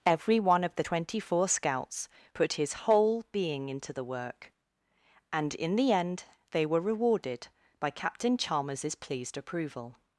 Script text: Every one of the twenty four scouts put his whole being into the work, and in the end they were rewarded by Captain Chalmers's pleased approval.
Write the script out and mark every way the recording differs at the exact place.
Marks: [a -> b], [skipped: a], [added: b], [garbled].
Every one of the twenty four scouts put his whole being into the work, and in the end they were rewarded by Captain Chalmers's pleased approval.